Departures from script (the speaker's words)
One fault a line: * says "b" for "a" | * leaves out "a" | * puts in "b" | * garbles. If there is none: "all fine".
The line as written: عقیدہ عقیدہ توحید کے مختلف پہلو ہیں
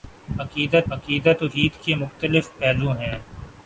all fine